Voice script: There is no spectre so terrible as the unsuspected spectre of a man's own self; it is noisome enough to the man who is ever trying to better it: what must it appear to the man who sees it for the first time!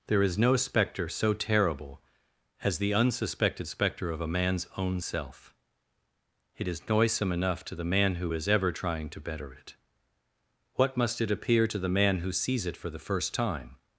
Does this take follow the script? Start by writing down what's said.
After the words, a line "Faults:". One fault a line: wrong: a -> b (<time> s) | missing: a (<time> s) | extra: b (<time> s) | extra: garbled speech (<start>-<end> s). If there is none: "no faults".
There is no spectre so terrible as the unsuspected spectre of a man's own self; it is noisome enough to the man who is ever trying to better it: what must it appear to the man who sees it for the first time!
Faults:
no faults